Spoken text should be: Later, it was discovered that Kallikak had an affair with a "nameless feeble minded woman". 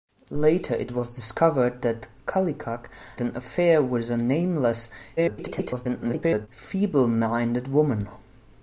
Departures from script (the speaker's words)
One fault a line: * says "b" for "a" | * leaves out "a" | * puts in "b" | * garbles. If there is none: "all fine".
* leaves out "had"
* garbles